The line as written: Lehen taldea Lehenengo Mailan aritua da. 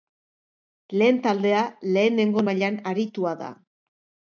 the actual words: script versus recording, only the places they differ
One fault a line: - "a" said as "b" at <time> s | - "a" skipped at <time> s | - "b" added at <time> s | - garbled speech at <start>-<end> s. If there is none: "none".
none